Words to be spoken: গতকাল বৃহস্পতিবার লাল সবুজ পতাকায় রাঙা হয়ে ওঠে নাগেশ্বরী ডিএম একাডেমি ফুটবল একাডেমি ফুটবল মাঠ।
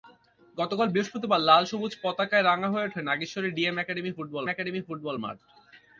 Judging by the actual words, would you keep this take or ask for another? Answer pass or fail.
pass